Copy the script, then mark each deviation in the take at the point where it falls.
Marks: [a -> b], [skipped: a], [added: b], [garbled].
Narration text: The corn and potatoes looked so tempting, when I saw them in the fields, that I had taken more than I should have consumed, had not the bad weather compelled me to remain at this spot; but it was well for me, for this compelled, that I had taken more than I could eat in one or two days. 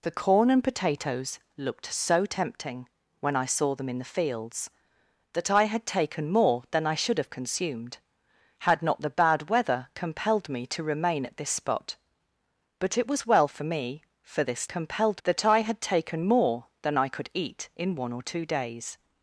The corn and potatoes looked so tempting, when I saw them in the fields, that I had taken more than I should have consumed, had not the bad weather compelled me to remain at this spot; but it was well for me, for this compelled, that I had taken more than I could eat in one or two days.